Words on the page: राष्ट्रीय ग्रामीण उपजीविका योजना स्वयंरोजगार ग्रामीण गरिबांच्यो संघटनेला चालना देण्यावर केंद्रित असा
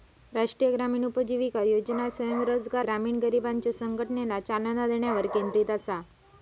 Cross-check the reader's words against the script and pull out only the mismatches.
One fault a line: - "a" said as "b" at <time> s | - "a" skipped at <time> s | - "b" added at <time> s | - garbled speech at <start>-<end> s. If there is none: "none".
none